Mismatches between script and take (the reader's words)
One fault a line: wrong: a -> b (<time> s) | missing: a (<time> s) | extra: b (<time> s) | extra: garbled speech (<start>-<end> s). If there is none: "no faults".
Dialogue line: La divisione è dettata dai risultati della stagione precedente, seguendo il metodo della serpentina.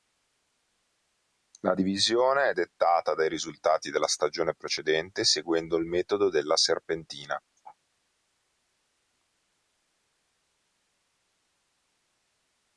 no faults